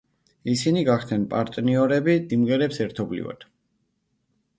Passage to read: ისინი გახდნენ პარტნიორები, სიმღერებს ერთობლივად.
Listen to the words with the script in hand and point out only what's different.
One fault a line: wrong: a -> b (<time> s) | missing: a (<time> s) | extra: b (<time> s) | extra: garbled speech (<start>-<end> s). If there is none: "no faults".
no faults